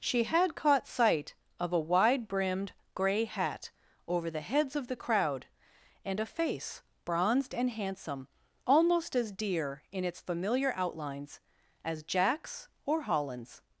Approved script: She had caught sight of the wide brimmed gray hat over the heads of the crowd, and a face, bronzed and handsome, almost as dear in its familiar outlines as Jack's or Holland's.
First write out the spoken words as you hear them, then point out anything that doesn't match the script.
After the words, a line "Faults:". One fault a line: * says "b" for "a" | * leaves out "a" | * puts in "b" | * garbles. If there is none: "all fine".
She had caught sight of a wide brimmed gray hat over the heads of the crowd, and a face, bronzed and handsome, almost as dear in its familiar outlines as Jack's or Holland's.
Faults:
* says "a" for "the"